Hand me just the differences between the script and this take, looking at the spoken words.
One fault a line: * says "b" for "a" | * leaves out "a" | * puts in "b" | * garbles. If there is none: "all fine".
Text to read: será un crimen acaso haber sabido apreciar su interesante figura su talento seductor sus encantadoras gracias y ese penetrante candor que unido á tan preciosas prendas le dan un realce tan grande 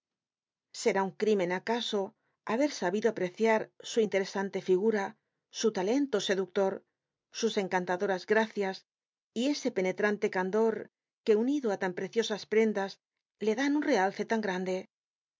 all fine